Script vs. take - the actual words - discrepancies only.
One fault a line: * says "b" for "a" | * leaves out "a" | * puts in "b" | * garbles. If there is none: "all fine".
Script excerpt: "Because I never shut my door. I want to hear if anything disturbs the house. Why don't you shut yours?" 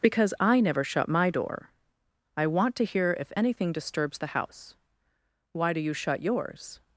* says "do" for "don't"